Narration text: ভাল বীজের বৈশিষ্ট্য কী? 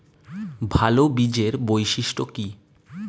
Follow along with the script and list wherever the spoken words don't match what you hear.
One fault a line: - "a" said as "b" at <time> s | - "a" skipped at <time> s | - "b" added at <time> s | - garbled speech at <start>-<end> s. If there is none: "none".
none